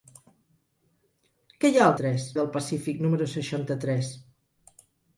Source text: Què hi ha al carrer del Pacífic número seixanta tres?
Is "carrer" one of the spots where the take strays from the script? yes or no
yes